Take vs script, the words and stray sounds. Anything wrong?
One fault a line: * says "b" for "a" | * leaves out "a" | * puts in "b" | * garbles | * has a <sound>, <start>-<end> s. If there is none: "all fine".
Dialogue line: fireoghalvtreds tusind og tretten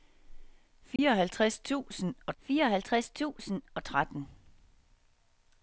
* has a dropout, 1.0-1.0 s
* puts in "fireoghalvtreds tusind og"